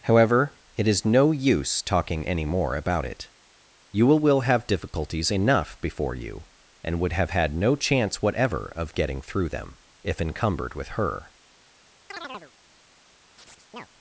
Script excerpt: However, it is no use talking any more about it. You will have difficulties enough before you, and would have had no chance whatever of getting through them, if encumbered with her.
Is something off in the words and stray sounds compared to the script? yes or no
yes